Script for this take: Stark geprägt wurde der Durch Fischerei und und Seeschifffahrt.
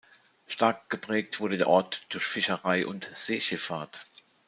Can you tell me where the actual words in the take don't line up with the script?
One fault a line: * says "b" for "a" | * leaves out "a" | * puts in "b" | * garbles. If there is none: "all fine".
* puts in "Ort"
* leaves out "und"